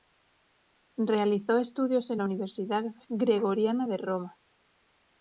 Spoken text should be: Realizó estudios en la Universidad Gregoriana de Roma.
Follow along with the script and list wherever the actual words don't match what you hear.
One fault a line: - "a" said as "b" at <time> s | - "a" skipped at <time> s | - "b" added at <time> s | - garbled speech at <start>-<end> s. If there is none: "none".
none